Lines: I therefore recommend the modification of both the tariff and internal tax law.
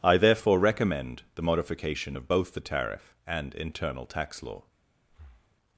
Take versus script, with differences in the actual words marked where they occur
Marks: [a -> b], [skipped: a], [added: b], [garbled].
I therefore recommend the modification of both the tariff and internal tax law.